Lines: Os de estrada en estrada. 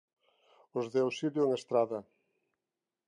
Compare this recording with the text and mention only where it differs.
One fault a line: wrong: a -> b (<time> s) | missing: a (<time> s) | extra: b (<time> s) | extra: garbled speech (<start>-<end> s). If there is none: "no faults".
wrong: estrada -> auxilio (1.1 s)